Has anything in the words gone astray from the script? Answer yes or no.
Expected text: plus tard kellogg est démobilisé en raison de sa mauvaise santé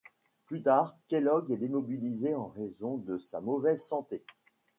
no